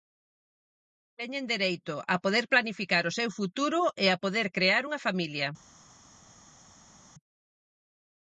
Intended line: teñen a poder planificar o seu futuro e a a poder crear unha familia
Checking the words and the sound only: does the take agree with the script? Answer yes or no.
no